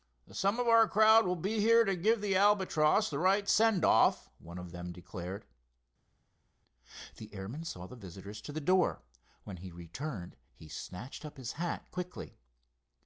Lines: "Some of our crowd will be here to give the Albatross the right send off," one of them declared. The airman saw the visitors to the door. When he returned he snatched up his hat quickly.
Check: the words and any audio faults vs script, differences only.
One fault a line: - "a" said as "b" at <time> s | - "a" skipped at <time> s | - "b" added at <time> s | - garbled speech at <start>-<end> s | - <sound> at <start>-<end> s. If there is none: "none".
none